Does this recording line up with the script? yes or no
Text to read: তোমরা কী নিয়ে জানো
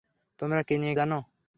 yes